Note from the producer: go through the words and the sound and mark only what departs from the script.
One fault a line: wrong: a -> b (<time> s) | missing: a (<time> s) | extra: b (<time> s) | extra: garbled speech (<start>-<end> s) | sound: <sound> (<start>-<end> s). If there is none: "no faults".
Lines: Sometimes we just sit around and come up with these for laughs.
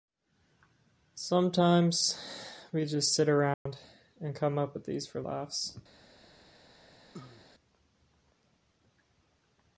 sound: dropout (3.5-3.7 s)
sound: cough (7.1-7.5 s)